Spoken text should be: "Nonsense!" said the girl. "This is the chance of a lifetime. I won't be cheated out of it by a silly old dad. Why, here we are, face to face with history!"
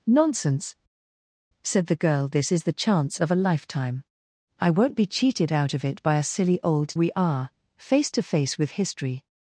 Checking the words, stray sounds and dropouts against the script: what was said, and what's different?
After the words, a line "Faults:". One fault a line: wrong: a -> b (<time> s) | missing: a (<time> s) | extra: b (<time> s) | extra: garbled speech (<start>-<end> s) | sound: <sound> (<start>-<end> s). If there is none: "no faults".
"Nonsense!" said the girl. "This is the chance of a lifetime. I won't be cheated out of it by a silly old we are, face to face with history!"
Faults:
missing: dad Why here (7.0 s)